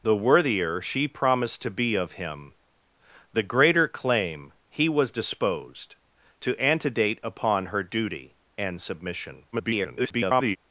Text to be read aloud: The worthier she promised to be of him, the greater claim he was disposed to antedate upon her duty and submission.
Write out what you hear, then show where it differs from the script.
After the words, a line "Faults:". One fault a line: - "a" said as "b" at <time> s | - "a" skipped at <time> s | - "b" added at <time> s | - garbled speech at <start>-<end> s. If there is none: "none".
The worthier she promised to be of him, the greater claim he was disposed to antedate upon her duty and submission. [garbled]
Faults:
- garbled speech at 9.5-10.6 s